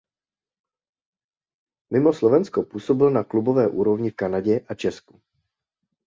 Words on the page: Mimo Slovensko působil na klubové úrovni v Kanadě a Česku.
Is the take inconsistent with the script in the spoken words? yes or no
no